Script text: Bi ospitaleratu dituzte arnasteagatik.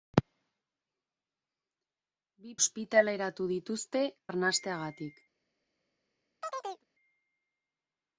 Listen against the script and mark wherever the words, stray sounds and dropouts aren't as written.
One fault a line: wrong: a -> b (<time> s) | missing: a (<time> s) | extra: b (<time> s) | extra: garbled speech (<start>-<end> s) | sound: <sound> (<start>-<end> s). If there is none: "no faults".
sound: chirp (6.4-6.8 s)